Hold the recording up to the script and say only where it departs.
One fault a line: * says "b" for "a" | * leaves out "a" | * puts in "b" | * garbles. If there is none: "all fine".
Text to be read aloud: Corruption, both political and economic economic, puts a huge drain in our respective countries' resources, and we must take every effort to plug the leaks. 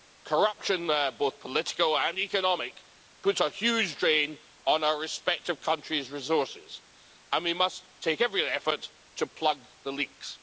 * leaves out "economic"
* says "on" for "in"